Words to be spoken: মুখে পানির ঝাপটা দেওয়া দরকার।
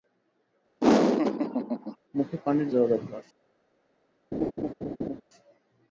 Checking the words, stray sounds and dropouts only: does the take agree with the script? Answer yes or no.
no